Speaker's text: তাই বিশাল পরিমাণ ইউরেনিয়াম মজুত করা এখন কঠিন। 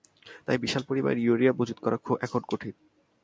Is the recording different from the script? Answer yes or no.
no